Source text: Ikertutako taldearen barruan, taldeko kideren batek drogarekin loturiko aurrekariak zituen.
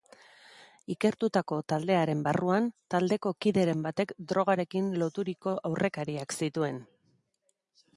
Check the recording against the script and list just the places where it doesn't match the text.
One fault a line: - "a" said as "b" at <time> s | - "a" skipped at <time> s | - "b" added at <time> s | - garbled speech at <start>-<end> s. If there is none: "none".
none